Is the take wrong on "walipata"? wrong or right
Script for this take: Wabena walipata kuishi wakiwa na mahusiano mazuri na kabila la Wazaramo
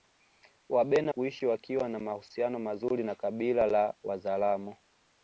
wrong